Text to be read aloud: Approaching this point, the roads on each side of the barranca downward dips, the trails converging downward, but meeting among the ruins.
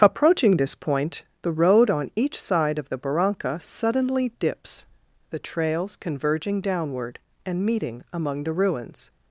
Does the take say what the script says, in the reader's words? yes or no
no